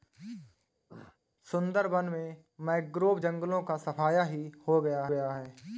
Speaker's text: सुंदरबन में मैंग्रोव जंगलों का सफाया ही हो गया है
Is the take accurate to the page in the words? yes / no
no